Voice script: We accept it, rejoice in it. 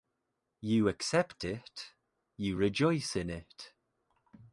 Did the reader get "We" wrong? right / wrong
wrong